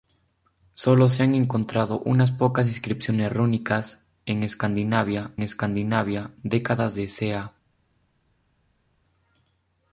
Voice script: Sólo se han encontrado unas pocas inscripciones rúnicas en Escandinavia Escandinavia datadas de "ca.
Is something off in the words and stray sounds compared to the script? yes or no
no